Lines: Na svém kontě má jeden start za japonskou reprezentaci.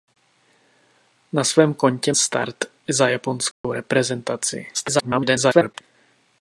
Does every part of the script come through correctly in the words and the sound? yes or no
no